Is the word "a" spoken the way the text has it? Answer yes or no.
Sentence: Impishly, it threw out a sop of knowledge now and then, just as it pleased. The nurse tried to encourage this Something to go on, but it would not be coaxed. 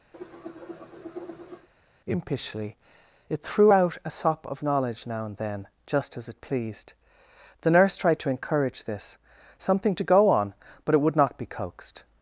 yes